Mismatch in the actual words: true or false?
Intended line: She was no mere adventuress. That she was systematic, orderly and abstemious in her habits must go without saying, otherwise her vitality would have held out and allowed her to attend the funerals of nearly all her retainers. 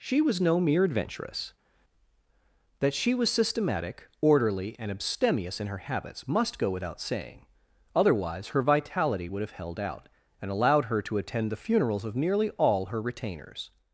false